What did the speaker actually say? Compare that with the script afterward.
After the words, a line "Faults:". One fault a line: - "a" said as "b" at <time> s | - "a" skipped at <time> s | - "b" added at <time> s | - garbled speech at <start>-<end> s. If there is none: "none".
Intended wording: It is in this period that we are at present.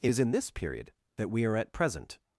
It is in this period that we are at present.
Faults:
none